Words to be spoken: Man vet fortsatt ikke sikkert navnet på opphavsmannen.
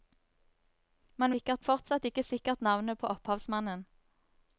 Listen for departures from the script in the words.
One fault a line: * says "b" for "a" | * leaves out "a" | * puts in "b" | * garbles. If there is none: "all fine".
* says "sikkert" for "vet"